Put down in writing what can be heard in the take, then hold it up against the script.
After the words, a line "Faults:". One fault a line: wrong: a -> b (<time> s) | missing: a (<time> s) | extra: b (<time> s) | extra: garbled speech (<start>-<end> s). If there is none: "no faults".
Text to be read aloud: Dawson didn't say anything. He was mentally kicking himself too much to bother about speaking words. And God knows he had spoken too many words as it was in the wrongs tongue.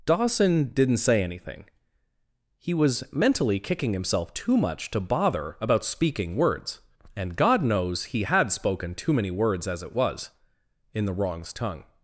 Dawson didn't say anything. He was mentally kicking himself too much to bother about speaking words. And God knows he had spoken too many words as it was in the wrongs tongue.
Faults:
no faults